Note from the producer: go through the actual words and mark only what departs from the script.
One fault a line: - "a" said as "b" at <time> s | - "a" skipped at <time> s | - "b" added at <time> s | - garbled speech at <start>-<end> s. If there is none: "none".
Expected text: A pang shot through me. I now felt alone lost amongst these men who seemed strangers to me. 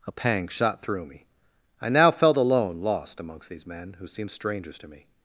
none